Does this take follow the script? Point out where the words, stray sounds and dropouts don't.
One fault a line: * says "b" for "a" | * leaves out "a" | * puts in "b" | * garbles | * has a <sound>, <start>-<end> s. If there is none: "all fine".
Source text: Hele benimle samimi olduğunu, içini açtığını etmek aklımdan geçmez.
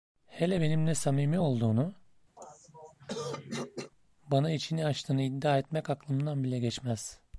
* has a throat clearing, 2.4-3.9 s
* puts in "bana"
* puts in "iddia"
* puts in "bile"